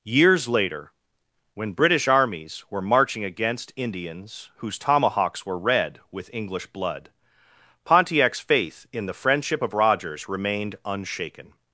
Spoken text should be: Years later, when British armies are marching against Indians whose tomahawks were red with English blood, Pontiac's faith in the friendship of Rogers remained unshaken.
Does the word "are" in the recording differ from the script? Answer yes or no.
yes